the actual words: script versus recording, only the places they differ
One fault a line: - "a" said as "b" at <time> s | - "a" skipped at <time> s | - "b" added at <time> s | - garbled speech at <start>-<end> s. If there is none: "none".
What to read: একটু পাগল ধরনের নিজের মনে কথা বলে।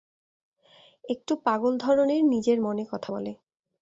none